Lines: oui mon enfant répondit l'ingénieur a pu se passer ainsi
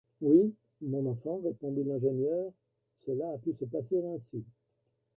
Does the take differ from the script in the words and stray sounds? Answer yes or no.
yes